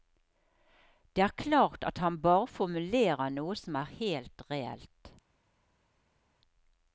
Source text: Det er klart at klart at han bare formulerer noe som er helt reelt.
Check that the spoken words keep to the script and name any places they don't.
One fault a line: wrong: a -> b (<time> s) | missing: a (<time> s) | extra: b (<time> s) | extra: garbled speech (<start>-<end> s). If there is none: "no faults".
missing: klart at (2.0 s)